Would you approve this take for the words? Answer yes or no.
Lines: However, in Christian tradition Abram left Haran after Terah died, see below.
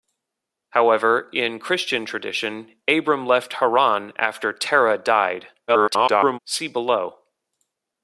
no